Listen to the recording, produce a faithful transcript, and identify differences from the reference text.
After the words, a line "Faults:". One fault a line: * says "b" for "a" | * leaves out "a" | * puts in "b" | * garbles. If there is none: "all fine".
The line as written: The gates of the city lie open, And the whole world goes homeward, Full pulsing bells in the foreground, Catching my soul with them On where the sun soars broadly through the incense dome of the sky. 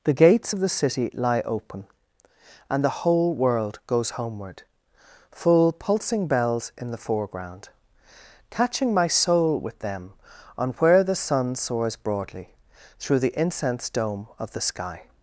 The gates of the city lie open, And the whole world goes homeward, Full pulsing bells in the foreground, Catching my soul with them On where the sun soars broadly through the incense dome of the sky.
Faults:
all fine